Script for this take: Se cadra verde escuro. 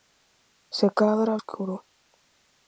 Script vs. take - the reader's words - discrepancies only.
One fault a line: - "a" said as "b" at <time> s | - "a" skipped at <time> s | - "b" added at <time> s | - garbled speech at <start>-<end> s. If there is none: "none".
- "verde" skipped at 1.4 s